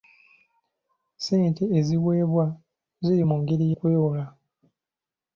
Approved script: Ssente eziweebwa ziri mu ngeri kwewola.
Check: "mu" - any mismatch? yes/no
no